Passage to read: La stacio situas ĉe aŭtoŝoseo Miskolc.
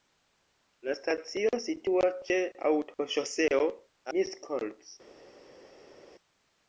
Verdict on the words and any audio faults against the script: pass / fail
pass